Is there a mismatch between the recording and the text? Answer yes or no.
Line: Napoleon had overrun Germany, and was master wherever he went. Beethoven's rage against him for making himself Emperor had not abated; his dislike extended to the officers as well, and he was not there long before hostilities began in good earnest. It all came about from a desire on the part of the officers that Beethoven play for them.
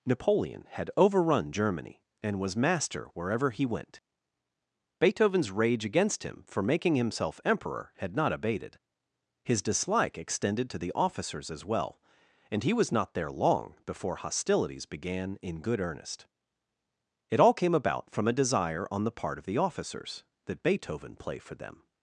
no